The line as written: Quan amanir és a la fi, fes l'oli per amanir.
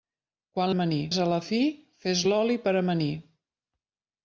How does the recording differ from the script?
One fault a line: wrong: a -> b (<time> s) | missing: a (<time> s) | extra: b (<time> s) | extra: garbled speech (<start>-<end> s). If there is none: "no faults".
no faults